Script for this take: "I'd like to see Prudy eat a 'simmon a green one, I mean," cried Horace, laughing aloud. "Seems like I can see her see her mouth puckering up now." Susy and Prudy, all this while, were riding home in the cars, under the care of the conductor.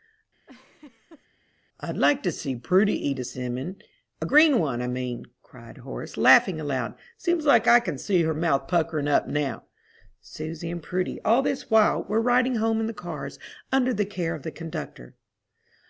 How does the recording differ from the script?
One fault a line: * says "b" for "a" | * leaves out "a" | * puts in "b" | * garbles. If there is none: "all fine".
* leaves out "see her"